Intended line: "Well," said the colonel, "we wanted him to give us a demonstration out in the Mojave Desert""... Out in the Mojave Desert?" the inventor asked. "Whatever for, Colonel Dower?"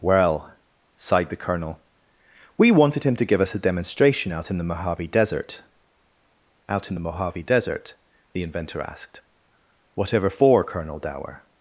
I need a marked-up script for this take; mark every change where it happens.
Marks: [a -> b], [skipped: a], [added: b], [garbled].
"Well," [said -> sighed] the colonel, "we wanted him to give us a demonstration out in the Mojave Desert""... Out in the Mojave Desert?" the inventor asked. "Whatever for, Colonel Dower?"